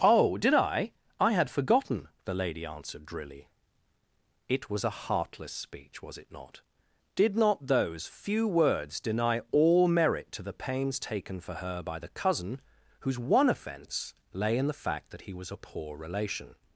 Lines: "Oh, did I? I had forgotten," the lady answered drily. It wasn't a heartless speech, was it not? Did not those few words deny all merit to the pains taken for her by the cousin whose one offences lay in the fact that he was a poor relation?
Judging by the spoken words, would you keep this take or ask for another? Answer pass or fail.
fail